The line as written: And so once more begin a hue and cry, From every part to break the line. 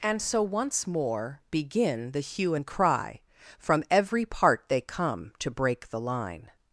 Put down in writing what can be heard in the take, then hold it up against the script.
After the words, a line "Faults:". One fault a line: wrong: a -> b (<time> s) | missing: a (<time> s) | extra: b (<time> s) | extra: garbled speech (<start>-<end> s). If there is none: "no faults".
And so once more begin the hue and cry, From every part they come to break the line.
Faults:
wrong: a -> the (2.1 s)
extra: they come (4.7 s)